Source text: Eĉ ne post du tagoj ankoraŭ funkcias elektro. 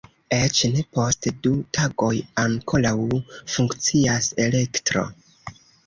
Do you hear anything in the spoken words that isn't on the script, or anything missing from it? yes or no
no